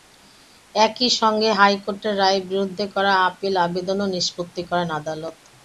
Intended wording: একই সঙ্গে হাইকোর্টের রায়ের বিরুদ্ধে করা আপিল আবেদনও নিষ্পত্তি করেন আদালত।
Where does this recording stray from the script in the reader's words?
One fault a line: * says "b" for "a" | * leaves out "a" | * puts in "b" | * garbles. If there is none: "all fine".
all fine